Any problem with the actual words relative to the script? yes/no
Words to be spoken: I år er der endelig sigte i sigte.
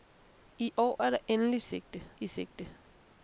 no